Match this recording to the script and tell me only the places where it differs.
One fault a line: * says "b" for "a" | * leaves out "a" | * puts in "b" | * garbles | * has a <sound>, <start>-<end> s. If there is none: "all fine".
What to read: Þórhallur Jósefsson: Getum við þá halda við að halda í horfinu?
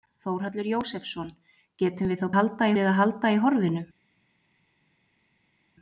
all fine